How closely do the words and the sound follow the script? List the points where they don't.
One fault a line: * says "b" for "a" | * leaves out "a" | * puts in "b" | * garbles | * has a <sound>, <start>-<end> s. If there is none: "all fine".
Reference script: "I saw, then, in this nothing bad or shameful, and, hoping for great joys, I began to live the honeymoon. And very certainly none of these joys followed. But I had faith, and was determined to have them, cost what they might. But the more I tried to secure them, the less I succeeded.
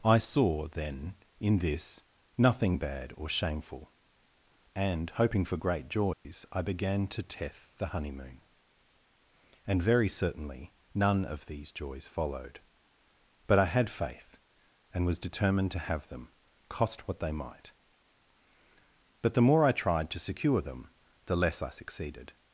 * has a dropout, 6.1-6.3 s
* says "teth" for "live"